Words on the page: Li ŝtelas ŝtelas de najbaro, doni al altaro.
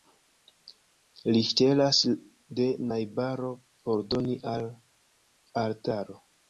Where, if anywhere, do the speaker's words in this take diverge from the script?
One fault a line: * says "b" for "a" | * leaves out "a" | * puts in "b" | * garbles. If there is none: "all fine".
* leaves out "ŝtelas"
* puts in "por"